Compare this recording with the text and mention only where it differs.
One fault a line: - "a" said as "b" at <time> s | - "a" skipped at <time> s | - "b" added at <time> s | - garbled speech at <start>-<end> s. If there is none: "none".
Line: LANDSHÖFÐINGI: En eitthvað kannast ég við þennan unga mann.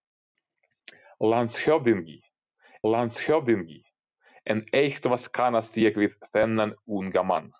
- "landshöfðingi" added at 2.9 s